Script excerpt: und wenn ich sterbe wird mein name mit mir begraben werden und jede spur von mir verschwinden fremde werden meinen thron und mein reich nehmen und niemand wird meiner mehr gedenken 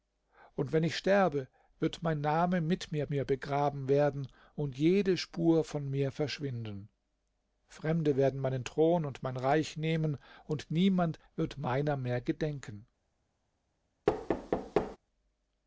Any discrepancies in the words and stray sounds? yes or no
yes